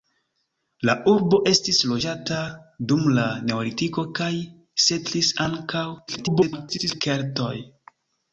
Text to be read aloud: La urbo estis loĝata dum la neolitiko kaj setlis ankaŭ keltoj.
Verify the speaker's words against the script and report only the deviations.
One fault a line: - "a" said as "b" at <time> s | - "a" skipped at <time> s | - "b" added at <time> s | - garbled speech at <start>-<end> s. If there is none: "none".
- garbled speech at 6.1-7.0 s